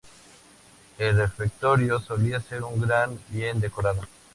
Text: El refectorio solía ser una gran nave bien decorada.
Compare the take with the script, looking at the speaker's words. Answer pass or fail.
fail